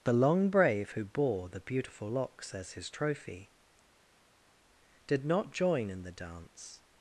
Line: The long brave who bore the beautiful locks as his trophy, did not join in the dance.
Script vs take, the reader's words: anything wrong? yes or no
no